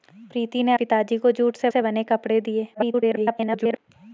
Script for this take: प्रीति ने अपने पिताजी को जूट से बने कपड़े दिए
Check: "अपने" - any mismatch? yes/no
yes